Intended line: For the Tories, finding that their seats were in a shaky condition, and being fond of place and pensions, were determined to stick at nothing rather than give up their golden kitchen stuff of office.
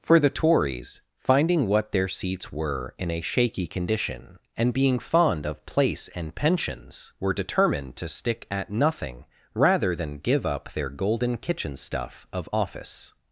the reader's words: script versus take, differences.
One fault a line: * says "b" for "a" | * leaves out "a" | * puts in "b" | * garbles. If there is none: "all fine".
* says "what" for "that"